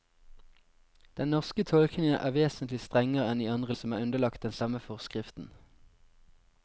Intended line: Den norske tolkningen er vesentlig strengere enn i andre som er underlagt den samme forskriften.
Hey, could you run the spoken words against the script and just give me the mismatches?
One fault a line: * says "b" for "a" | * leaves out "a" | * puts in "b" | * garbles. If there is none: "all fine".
all fine